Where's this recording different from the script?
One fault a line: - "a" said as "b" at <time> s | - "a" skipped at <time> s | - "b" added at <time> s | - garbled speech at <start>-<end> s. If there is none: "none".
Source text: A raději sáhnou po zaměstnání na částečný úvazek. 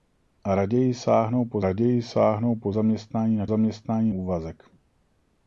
- "raději sáhnou po" added at 1.6 s
- "částečný" said as "zaměstnání" at 3.5 s